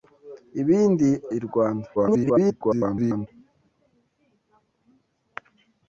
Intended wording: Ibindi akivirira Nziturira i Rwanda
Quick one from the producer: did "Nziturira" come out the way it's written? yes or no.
no